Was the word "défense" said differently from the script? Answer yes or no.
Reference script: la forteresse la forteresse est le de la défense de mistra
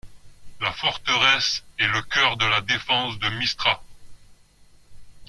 no